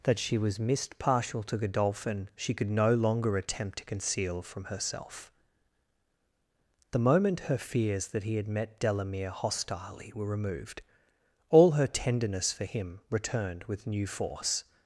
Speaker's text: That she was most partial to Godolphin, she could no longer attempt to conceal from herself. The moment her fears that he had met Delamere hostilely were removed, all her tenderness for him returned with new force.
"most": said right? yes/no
no